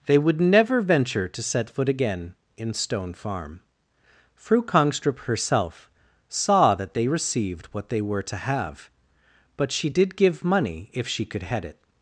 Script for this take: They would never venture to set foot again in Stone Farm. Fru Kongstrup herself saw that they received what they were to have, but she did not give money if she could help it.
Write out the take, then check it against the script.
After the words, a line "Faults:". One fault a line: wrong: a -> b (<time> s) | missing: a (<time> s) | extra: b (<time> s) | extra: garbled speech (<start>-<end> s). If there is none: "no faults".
They would never venture to set foot again in Stone Farm. Fru Kongstrup herself saw that they received what they were to have, but she did give money if she could head it.
Faults:
missing: not (10.2 s)
wrong: help -> head (11.4 s)